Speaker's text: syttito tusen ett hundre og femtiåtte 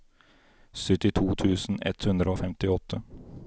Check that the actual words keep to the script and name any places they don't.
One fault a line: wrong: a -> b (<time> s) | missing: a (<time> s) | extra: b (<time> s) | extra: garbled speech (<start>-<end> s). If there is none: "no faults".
no faults